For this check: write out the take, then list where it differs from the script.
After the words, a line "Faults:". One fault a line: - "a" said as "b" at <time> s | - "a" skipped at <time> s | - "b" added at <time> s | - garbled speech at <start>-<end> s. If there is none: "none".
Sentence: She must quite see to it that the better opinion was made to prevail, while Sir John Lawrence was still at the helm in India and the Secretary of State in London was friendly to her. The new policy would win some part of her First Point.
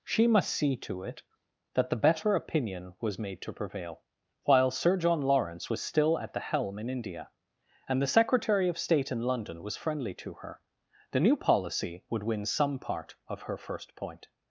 She must see to it that the better opinion was made to prevail, while Sir John Lawrence was still at the helm in India and the Secretary of State in London was friendly to her. The new policy would win some part of her First Point.
Faults:
- "quite" skipped at 0.5 s